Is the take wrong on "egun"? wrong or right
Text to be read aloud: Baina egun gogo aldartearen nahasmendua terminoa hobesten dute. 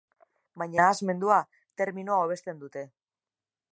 wrong